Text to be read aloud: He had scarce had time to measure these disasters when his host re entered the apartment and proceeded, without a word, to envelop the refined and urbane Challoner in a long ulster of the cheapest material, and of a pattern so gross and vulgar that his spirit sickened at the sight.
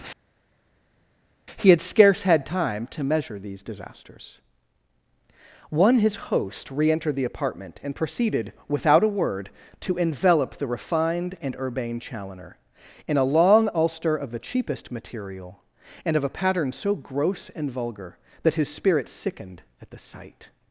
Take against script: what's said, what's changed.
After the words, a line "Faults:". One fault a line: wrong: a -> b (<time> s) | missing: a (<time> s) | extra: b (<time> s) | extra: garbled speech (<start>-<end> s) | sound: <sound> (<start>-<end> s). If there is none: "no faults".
He had scarce had time to measure these disasters one his host re entered the apartment and proceeded, without a word, to envelop the refined and urbane Challoner in a long ulster of the cheapest material, and of a pattern so gross and vulgar that his spirit sickened at the sight.
Faults:
wrong: when -> one (5.7 s)